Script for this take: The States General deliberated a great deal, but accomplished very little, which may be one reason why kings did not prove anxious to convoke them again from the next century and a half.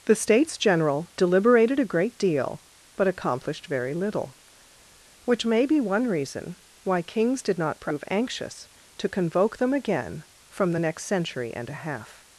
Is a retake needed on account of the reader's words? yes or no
no